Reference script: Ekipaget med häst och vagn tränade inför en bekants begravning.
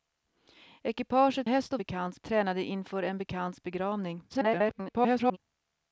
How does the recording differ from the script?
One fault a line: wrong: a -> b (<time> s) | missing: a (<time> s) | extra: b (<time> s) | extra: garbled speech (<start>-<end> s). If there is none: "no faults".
missing: med (1.5 s)
wrong: vagn -> bekants (1.8 s)
extra: garbled speech (4.3-5.4 s)